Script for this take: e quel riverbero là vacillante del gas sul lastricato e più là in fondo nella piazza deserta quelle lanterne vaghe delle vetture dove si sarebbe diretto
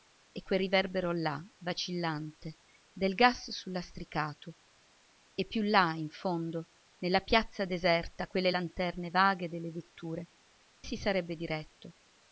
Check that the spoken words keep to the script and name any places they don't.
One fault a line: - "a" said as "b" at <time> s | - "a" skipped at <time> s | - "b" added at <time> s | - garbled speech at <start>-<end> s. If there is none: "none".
- "dove" skipped at 10.3 s